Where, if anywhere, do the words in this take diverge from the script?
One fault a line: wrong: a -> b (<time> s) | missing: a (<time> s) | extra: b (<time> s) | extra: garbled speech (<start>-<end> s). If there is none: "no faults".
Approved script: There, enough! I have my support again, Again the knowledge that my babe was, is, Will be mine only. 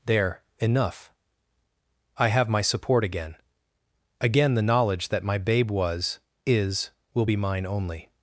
no faults